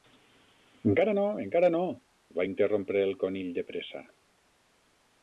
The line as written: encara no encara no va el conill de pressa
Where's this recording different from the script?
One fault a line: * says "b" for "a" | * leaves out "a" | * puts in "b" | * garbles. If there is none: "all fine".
* puts in "interrompre"